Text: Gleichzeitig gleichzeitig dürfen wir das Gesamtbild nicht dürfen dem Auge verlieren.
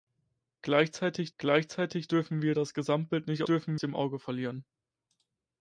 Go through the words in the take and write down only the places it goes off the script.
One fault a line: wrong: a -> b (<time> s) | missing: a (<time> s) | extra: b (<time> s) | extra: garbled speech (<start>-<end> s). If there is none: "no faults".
no faults